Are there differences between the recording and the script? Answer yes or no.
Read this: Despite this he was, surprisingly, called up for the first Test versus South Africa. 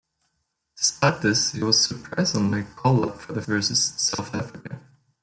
yes